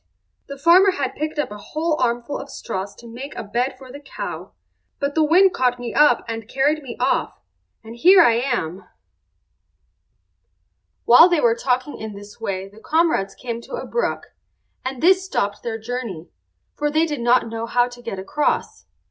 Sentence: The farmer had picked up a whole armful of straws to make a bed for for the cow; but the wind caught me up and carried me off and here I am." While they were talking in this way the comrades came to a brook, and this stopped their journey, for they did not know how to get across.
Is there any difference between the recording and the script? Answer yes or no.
yes